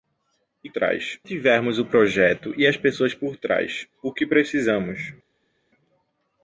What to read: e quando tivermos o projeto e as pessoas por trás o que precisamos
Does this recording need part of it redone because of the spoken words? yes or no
yes